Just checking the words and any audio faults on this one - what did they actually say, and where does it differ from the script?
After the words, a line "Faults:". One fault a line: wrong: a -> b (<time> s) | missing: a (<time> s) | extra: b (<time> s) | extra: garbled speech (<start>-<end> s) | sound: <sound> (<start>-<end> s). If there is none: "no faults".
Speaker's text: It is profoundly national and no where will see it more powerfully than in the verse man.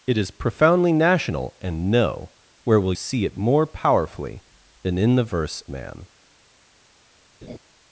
It is profoundly national and no where will see it more powerfully than in the verse man.
Faults:
sound: laugh (7.4-7.6 s)